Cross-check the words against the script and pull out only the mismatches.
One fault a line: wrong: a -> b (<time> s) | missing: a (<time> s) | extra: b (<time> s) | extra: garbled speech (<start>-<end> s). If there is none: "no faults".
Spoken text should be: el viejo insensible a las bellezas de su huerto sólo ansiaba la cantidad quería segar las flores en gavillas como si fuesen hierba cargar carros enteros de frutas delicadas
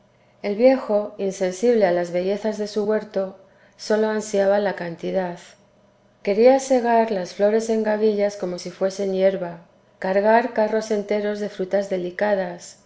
no faults